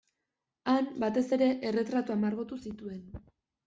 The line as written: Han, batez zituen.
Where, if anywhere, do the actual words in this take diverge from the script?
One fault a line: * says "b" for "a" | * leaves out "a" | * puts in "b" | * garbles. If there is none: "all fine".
* puts in "ere erretratuak margotu"